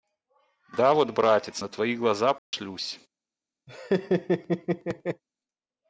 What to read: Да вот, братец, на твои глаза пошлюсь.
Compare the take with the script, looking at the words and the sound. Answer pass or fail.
fail